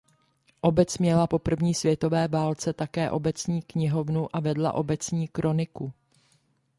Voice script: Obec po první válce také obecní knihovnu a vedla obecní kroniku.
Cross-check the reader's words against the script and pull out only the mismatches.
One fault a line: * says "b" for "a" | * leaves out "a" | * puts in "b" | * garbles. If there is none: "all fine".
* puts in "měla"
* puts in "světové"